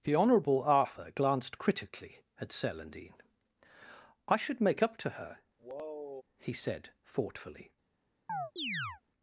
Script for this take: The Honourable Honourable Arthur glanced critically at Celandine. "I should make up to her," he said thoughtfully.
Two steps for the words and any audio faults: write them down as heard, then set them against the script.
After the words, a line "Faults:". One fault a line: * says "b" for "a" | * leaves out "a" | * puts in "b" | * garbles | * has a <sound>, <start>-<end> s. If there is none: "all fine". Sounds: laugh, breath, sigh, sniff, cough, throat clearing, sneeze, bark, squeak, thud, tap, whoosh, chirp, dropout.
The Honourable Arthur glanced critically at Celandine. "I should make up to her," he said thoughtfully.
Faults:
* leaves out "Honourable"
* has a sigh, 5.6-6.2 s
* has a chirp, 8.3-9.0 s